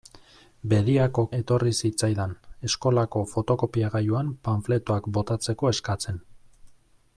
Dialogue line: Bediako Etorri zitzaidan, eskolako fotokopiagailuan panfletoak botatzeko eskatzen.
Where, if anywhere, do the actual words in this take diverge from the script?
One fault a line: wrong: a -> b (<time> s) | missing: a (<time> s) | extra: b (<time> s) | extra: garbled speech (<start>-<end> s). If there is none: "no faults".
no faults